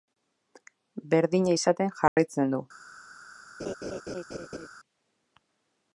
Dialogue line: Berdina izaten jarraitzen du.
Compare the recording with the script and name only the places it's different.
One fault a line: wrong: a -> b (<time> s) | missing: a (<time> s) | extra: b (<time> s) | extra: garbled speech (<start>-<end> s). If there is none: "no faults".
no faults